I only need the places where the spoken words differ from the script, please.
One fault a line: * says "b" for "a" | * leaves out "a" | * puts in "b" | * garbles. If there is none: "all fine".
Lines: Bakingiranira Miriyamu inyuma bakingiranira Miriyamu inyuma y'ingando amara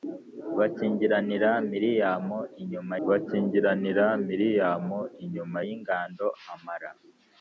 all fine